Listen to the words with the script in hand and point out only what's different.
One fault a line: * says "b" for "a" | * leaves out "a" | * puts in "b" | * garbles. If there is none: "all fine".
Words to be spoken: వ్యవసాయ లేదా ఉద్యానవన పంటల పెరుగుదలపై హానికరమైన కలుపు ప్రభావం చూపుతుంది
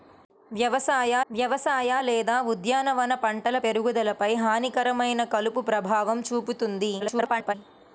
* puts in "వ్యవసాయ"
* garbles